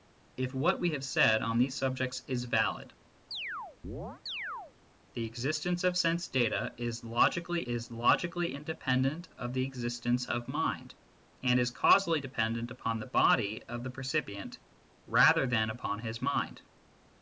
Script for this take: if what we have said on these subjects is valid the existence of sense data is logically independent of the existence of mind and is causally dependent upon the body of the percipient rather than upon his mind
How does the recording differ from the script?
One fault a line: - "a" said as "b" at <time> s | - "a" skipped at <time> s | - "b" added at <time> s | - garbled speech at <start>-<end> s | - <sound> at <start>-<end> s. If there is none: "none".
- chirp at 3.3-4.7 s
- "is logically" added at 7.6 s